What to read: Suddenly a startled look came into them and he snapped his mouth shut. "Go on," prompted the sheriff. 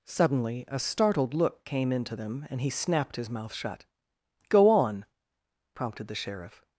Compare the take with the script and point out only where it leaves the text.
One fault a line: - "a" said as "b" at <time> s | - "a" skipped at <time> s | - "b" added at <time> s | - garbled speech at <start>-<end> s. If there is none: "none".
none